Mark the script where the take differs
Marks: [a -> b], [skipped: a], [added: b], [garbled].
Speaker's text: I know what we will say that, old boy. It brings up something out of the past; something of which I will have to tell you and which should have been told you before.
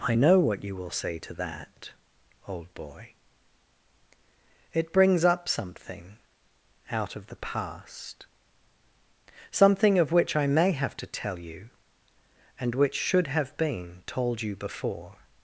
I know what [we -> you] will say [added: to] that, old boy. It brings up something out of the past; something of which I [will -> may] have to tell you and which should have been told you before.